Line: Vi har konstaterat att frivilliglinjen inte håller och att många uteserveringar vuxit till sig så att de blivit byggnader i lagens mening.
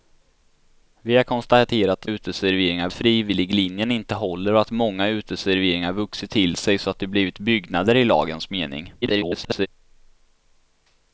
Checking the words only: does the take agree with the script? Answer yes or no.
no